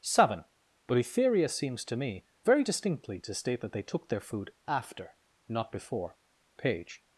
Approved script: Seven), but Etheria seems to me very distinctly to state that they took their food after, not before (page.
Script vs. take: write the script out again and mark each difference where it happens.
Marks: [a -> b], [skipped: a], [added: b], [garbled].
Seven), but Etheria seems to me very distinctly to state that they took their food after, not before (page.